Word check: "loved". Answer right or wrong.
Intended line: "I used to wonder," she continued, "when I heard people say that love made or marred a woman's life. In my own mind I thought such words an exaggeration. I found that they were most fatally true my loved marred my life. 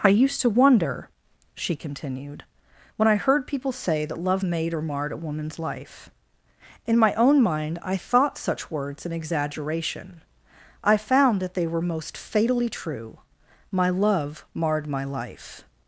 wrong